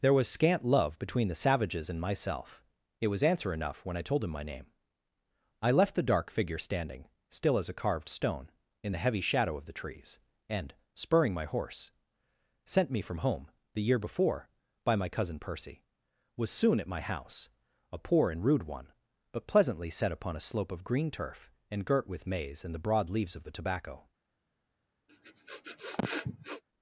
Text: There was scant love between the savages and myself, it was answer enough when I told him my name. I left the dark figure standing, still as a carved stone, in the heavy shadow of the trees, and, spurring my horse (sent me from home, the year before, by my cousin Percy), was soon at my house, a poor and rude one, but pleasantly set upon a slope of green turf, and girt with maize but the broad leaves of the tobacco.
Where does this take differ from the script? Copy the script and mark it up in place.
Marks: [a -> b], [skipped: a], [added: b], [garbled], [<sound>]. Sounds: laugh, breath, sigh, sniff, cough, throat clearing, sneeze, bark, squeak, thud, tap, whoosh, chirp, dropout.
There was scant love between the savages and myself, it was answer enough when I told him my name. I left the dark figure standing, still as a carved stone, in the heavy shadow of the trees, and, spurring my horse (sent me from home, the year before, by my cousin Percy), was soon at my house, a poor and rude one, but pleasantly set upon a slope of green turf, and girt with maize [but -> and] the broad leaves of the tobacco. [sniff]